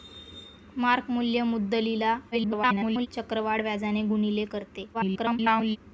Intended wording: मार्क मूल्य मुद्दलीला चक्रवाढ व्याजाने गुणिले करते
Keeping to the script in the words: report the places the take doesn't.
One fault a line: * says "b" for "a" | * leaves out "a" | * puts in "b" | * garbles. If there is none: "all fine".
* garbles
* garbles